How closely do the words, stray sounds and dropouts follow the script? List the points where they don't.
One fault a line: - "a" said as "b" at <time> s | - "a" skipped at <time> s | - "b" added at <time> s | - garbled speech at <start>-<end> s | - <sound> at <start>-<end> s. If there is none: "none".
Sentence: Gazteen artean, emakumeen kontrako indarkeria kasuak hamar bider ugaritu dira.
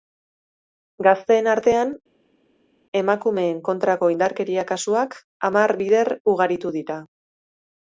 none